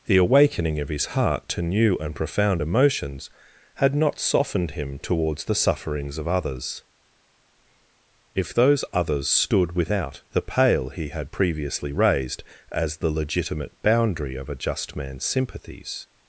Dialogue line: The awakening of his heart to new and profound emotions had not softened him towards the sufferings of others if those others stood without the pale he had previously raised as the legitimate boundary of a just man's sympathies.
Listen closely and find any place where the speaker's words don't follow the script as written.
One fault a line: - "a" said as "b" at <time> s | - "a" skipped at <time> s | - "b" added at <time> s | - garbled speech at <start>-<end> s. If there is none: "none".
none